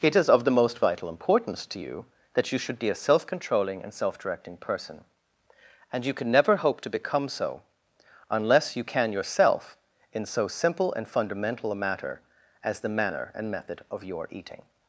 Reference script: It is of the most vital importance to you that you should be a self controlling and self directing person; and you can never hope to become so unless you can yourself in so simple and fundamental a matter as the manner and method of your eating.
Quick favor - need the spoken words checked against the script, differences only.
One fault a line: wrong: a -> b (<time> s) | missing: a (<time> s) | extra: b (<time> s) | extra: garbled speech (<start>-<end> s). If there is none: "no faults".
no faults